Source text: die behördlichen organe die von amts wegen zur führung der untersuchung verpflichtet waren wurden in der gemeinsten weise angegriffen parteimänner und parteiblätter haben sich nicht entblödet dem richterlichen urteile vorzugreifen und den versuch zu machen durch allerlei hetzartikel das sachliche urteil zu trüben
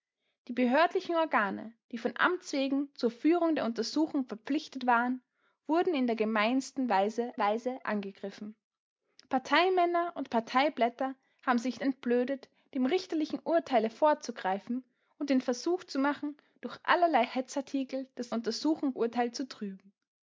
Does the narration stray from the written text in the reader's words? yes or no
yes